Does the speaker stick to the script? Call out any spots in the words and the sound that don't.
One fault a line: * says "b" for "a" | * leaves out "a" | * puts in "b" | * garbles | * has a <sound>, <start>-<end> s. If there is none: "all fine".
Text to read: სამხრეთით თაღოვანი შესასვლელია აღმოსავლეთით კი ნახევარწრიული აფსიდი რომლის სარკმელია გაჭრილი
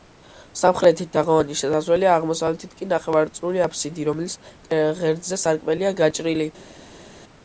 * puts in "ღერძზე"